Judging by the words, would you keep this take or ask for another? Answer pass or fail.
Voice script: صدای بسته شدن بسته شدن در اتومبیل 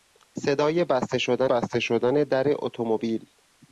pass